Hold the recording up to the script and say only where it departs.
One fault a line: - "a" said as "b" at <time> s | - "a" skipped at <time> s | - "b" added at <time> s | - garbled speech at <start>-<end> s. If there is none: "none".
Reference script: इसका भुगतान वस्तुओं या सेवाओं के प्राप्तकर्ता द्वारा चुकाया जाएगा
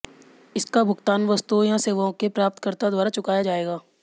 none